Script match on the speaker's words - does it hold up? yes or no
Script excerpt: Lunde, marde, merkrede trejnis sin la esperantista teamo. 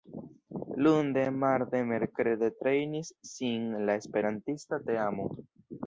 yes